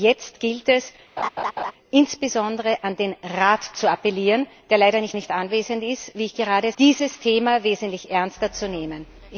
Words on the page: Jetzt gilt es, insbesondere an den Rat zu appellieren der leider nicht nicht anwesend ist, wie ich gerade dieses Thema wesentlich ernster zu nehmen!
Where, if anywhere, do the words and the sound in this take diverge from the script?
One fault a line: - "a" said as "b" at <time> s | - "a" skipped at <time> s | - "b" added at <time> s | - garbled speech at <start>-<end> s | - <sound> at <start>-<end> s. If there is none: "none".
- laugh at 1.2-1.7 s